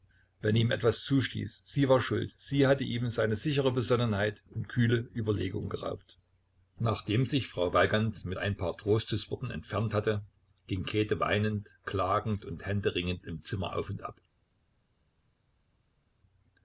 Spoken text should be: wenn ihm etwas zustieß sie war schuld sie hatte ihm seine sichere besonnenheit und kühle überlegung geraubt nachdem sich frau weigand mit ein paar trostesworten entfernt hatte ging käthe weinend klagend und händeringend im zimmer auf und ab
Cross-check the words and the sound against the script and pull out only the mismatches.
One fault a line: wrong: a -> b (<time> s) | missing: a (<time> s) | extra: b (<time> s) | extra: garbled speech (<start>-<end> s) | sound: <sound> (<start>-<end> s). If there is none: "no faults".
no faults